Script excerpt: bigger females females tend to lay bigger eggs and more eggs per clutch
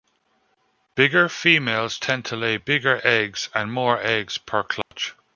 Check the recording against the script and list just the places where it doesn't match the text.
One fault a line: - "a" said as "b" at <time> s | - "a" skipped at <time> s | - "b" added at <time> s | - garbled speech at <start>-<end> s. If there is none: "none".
- "females" skipped at 2.0 s